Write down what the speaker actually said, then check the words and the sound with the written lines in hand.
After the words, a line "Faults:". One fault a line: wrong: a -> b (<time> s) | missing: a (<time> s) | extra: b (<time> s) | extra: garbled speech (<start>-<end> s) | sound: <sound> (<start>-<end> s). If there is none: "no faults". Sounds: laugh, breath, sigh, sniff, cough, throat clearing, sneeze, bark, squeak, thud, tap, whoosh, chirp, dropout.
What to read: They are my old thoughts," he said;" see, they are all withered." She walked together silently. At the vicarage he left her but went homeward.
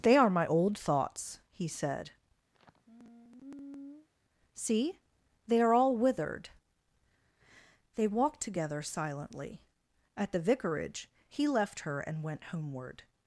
They are my old thoughts," he said;" see, they are all withered." They walked together silently. At the vicarage he left her and went homeward.
Faults:
sound: sigh (2.5-4.1 s)
wrong: She -> They (7.9 s)
wrong: but -> and (12.0 s)